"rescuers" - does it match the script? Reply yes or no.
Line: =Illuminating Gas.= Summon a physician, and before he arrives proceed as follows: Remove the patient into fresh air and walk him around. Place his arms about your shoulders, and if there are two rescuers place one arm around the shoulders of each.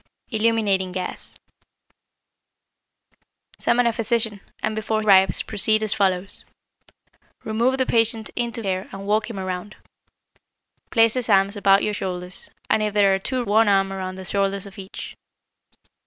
no